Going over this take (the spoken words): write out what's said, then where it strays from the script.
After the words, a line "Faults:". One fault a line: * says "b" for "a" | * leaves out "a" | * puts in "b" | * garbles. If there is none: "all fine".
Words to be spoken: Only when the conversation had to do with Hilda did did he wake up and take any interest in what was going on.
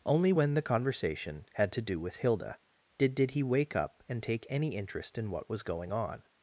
Only when the conversation had to do with Hilda did did he wake up and take any interest in what was going on.
Faults:
all fine